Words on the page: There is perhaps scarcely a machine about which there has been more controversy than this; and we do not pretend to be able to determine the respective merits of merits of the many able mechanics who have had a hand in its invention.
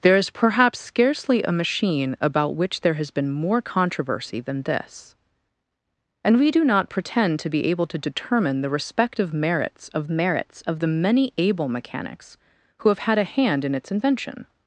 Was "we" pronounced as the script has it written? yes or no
yes